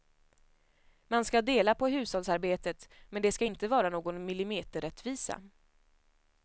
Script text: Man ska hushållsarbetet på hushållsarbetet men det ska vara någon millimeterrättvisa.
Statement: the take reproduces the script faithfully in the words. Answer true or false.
false